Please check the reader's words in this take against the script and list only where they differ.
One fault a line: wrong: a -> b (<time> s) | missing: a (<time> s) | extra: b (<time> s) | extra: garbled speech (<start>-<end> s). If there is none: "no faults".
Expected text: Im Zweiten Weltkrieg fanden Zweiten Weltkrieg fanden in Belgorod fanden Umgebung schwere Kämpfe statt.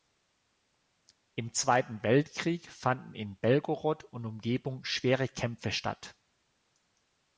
missing: Zweiten Weltkrieg fanden (3.1 s)
wrong: fanden -> und (4.0 s)